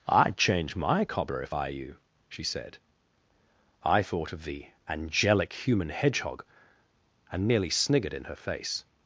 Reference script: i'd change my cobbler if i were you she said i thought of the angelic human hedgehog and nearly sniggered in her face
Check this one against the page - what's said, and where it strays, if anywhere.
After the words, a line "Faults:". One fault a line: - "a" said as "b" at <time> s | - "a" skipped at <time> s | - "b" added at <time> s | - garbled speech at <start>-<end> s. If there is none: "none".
i'd change my cobbler if i you she said i thought of the angelic human hedgehog and nearly sniggered in her face
Faults:
- "were" skipped at 1.7 s